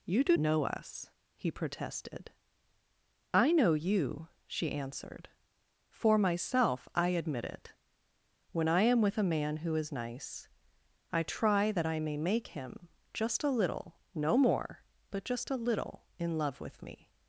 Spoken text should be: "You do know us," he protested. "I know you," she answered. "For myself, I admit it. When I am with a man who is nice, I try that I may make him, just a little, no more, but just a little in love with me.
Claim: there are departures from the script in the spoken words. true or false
false